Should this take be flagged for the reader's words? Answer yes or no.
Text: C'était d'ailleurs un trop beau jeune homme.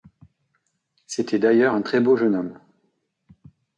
yes